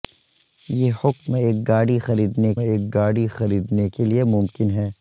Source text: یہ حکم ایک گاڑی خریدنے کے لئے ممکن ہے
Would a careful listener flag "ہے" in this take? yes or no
no